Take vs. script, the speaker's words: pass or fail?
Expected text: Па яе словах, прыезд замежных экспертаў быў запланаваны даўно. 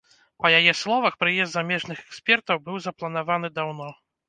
pass